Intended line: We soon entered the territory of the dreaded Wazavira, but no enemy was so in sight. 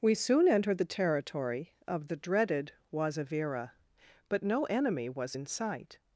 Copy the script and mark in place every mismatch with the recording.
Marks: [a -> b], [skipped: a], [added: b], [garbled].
We soon entered the territory of the dreaded Wazavira, but no enemy was [skipped: so] in sight.